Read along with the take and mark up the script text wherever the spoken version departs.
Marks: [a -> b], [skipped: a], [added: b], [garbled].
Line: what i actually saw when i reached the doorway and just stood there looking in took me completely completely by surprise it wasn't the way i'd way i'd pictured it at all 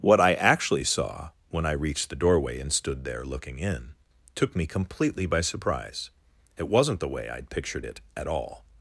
what i actually saw when i reached the doorway and [skipped: just] stood there looking in took me completely [skipped: completely] by surprise it wasn't the way i'd [skipped: way i'd] pictured it at all